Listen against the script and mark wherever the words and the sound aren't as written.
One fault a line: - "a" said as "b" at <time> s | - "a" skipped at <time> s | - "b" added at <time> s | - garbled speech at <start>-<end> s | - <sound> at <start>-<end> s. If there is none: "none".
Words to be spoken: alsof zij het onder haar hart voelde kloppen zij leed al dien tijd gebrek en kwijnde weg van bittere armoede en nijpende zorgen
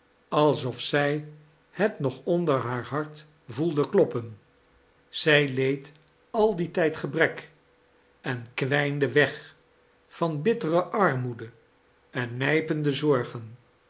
- "nog" added at 2.0 s